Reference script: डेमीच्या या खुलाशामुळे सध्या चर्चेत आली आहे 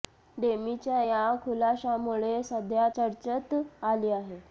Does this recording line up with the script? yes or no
yes